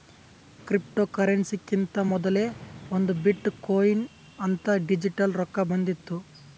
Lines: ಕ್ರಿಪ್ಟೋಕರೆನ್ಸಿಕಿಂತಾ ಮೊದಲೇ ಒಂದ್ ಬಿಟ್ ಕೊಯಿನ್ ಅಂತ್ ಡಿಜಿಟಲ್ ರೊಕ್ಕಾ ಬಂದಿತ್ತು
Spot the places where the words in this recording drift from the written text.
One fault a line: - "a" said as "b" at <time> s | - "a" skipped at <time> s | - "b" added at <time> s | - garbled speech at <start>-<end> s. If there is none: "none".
none